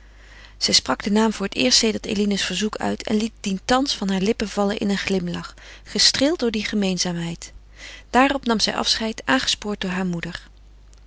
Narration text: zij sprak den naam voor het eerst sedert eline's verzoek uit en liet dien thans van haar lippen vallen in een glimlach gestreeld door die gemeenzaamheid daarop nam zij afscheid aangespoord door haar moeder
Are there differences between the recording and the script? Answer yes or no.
no